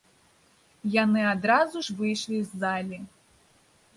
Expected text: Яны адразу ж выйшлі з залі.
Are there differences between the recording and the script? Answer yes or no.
no